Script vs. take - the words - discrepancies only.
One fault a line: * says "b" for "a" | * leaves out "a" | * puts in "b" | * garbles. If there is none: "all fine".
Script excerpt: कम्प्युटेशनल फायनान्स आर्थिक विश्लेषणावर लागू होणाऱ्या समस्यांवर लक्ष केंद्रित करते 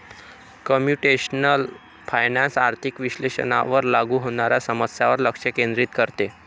all fine